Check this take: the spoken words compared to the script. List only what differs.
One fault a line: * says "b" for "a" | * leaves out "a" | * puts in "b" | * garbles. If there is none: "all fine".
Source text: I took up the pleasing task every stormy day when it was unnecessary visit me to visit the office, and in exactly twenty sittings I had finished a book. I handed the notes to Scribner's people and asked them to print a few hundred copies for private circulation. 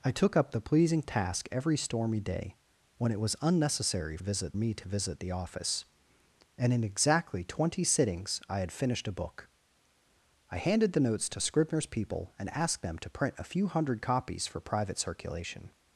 all fine